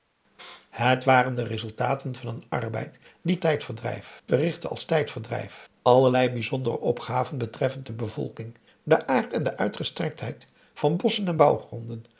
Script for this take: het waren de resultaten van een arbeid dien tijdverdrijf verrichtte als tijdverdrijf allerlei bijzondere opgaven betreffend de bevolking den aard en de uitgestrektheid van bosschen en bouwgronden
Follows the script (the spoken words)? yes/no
yes